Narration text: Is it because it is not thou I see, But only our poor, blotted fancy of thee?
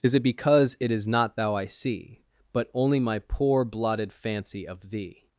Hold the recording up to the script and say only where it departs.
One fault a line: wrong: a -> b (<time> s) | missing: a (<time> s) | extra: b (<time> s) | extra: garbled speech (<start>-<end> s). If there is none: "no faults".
wrong: our -> my (3.0 s)